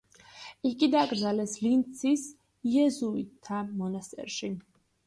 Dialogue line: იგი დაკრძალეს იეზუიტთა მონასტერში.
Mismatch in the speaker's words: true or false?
true